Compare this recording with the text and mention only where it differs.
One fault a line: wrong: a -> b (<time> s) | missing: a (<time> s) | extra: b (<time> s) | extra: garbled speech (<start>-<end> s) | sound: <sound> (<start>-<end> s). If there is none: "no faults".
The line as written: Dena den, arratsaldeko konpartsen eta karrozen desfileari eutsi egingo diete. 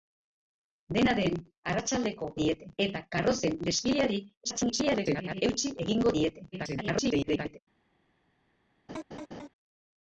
wrong: konpartsen -> diete (2.4 s)
extra: garbled speech (4.4-5.4 s)
extra: garbled speech (6.5-7.6 s)
sound: laugh (8.9-9.5 s)